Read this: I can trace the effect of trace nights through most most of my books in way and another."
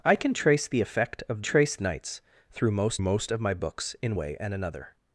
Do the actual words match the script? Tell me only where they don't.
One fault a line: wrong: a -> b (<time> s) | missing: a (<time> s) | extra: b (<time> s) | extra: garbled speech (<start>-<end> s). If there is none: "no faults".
no faults